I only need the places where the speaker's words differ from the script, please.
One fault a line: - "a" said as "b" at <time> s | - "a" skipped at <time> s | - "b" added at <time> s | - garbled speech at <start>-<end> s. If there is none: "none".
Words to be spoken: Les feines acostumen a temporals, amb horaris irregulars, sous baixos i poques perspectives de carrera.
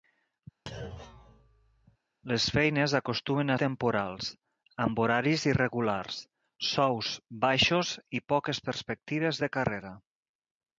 none